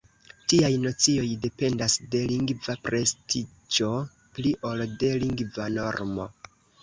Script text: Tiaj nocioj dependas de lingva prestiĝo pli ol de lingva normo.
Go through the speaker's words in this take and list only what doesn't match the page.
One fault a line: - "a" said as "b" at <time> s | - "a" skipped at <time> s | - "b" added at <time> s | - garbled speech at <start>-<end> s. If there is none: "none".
none